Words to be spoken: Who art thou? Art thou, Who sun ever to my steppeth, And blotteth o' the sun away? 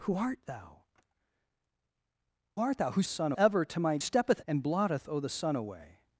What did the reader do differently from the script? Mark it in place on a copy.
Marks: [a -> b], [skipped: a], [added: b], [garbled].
Who art thou? Art thou, Who sun ever to my steppeth, And blotteth o' the sun away?